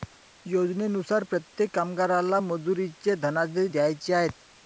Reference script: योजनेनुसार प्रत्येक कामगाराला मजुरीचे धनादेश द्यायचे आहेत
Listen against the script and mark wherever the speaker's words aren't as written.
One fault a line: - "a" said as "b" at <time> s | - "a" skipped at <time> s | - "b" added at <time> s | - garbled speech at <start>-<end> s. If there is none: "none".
none